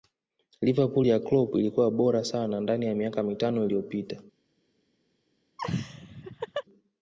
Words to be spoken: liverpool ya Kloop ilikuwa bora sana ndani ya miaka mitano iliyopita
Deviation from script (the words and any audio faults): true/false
true